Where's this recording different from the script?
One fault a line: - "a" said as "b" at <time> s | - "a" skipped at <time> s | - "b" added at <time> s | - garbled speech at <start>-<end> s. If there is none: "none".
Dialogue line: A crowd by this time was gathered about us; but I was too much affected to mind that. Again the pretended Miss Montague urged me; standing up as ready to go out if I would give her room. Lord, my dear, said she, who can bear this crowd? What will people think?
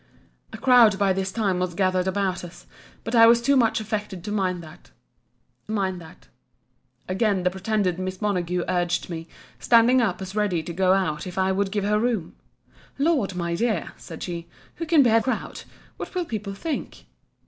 - "mind that" added at 5.7 s
- "this" skipped at 15.2 s